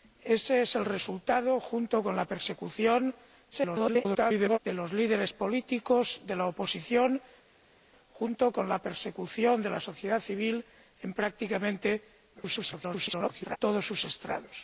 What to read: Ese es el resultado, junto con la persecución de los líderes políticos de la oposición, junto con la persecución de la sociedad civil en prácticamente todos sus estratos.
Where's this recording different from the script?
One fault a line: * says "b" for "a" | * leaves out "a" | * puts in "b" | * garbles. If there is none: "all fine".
* garbles
* garbles